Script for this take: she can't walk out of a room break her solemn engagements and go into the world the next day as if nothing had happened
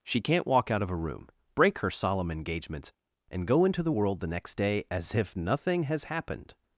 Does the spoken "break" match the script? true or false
true